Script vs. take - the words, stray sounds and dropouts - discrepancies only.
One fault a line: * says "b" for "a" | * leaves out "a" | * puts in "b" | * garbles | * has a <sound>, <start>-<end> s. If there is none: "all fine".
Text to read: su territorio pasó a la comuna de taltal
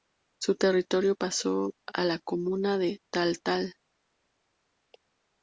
all fine